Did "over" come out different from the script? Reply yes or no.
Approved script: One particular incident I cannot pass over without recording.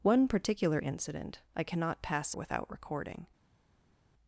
yes